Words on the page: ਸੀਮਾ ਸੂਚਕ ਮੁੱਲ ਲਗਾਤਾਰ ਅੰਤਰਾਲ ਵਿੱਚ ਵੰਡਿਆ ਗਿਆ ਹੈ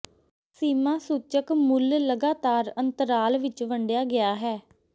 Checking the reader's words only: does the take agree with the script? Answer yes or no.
yes